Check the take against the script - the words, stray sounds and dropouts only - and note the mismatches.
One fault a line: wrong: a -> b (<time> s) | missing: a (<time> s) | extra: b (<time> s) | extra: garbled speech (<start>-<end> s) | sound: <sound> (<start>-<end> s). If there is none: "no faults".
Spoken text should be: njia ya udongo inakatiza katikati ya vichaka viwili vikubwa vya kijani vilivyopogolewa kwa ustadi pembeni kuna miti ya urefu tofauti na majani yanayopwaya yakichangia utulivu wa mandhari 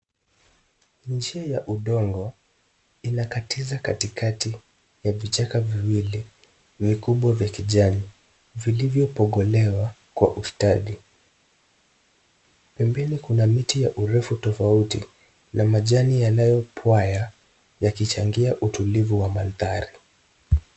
no faults